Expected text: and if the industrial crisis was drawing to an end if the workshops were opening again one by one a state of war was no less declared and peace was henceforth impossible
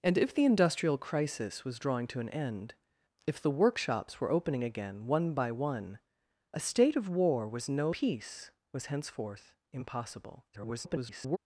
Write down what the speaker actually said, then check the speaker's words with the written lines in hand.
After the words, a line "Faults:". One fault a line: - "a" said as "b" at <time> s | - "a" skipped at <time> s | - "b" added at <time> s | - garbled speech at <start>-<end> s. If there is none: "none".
and if the industrial crisis was drawing to an end if the workshops were opening again one by one a state of war was no peace was henceforth impossible [garbled]
Faults:
- "less declared and" skipped at 7.9 s
- garbled speech at 10.5-11.4 s